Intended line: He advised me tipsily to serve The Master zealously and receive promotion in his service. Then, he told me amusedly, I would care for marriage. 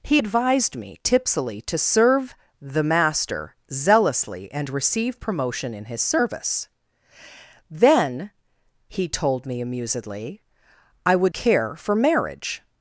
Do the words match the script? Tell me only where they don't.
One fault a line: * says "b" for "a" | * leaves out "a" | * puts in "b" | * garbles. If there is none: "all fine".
all fine